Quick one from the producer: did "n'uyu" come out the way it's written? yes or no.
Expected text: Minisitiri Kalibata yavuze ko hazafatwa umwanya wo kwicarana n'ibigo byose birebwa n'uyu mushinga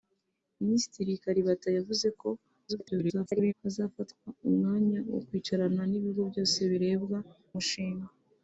no